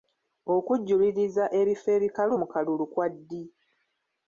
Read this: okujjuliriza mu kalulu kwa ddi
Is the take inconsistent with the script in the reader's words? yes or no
yes